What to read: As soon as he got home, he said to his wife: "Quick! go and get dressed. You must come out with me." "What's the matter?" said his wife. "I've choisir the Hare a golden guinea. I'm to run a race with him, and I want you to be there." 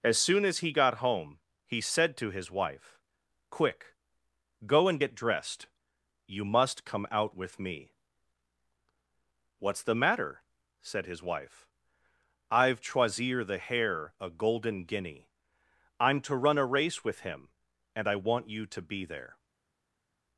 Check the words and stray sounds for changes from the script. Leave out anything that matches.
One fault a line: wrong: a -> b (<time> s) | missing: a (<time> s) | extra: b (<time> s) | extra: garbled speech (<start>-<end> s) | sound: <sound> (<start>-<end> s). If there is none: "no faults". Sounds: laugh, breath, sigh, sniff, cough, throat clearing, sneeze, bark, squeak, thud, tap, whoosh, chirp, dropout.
no faults